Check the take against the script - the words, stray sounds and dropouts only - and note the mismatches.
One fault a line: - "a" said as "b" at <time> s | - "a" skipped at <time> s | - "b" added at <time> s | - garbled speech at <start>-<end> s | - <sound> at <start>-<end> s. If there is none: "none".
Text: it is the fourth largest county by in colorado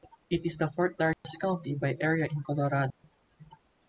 - dropout at 1.1-1.2 s
- "area" added at 2.0 s
- dropout at 2.9-3.0 s